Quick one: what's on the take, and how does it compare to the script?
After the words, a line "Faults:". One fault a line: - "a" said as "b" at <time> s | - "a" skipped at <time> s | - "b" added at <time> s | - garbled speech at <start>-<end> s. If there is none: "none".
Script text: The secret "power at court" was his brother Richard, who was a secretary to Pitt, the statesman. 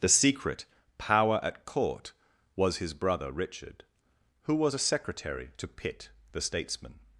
The secret "power at court" was his brother Richard, who was a secretary to Pitt, the statesman.
Faults:
none